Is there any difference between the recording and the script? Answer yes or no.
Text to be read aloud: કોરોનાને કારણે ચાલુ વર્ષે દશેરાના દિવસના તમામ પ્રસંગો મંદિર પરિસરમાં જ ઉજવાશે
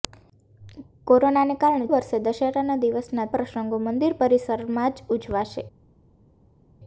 yes